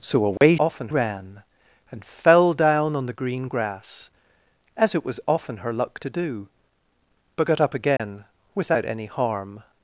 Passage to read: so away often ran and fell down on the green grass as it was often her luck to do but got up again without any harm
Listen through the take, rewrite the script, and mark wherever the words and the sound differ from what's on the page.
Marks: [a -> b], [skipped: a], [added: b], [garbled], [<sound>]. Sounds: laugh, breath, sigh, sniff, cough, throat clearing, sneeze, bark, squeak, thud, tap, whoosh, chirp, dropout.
so away [dropout] often ran and fell down on the green grass as it was often her luck to do but got up again [dropout] without any harm